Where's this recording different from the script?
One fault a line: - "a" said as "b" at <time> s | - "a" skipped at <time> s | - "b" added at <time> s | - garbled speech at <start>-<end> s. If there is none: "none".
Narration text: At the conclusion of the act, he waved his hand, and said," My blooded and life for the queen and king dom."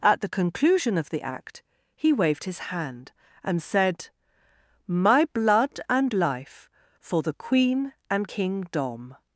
- "blooded" said as "blood" at 5.3 s